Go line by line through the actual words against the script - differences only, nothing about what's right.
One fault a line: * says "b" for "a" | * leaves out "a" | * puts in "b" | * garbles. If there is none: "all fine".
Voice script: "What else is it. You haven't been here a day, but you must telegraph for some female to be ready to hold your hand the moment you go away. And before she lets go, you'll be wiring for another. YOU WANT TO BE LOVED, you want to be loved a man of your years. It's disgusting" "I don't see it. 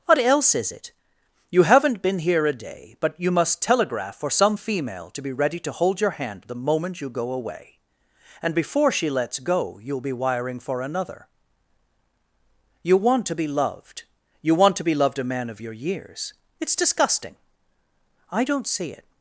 all fine